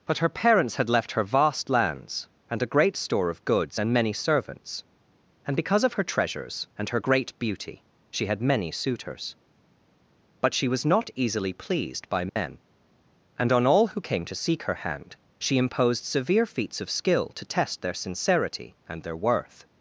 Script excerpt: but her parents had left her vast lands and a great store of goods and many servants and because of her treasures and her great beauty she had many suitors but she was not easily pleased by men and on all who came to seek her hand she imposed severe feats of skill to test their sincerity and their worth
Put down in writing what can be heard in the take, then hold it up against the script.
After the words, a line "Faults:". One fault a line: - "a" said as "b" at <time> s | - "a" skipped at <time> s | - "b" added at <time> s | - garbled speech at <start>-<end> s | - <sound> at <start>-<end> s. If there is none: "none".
but her parents had left her vast lands and a great store of goods and many servants and because of her treasures and her great beauty she had many suitors but she was not easily pleased by men and on all who came to seek her hand she imposed severe feats of skill to test their sincerity and their worth
Faults:
- dropout at 12.3-12.4 s